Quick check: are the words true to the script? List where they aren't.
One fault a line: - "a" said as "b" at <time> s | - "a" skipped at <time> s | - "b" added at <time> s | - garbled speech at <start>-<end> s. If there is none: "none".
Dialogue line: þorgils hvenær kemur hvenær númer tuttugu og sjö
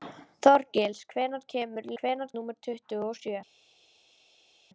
none